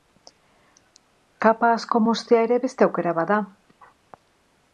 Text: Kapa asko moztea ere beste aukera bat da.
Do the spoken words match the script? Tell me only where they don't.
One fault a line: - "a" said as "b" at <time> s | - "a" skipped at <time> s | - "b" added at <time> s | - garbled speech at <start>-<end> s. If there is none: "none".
none